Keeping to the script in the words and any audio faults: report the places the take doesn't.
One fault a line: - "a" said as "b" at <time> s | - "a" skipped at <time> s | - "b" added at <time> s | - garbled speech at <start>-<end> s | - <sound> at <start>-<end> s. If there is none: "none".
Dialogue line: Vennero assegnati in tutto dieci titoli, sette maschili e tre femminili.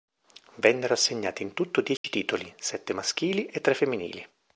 - dropout at 2.0-2.0 s